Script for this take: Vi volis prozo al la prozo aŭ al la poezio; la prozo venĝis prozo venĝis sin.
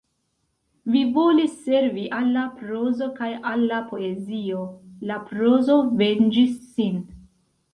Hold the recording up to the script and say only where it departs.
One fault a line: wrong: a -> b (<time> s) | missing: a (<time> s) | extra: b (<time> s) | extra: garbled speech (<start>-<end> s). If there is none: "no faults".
wrong: prozo -> servi (1.6 s)
wrong: aŭ -> kaj (3.2 s)
missing: prozo venĝis (6.6 s)